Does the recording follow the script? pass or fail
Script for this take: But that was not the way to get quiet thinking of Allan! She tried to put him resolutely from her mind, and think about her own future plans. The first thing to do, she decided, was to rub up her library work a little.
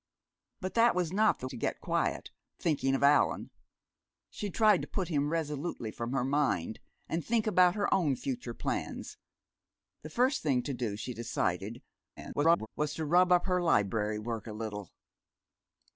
fail